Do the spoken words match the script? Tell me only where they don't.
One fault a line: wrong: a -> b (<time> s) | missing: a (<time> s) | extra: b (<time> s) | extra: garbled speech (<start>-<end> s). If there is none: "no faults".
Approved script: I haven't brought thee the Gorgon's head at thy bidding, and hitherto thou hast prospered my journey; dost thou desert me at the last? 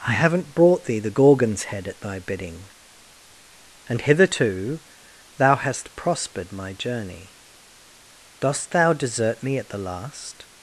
no faults